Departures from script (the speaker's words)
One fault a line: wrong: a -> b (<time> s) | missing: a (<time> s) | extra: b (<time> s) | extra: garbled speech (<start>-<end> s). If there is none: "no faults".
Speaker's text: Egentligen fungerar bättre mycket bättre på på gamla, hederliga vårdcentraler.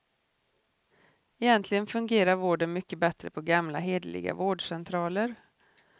wrong: bättre -> vården (2.4 s)
missing: på (3.4 s)